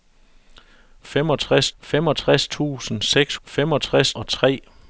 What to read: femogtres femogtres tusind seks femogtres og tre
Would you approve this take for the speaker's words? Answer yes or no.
yes